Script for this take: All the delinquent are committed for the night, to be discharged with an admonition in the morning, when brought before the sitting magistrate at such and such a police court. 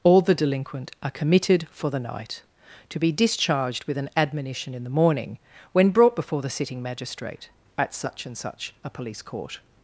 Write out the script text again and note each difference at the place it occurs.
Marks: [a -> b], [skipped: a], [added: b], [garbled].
All the delinquent are committed for the night, to be discharged with an admonition in the morning, when brought before the sitting magistrate at such and such a police court.